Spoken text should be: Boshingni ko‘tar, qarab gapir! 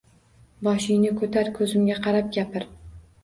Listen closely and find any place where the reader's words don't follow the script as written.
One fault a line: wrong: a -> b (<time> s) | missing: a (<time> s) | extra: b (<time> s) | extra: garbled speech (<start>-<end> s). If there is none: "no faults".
extra: ko‘zimga (1.6 s)